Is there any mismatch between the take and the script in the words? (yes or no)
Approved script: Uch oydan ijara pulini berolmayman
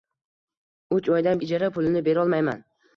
no